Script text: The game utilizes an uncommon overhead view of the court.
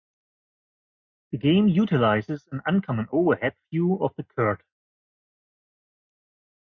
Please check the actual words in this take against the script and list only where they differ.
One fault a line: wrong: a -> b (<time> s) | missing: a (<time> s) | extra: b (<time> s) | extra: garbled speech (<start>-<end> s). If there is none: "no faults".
no faults